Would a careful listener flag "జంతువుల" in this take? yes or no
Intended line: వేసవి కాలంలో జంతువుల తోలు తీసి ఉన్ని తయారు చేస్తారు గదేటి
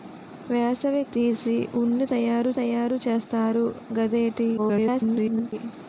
yes